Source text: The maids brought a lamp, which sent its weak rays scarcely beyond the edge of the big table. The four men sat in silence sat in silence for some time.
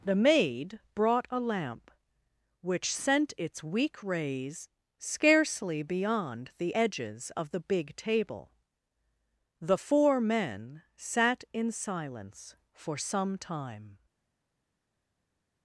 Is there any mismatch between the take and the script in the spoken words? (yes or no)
yes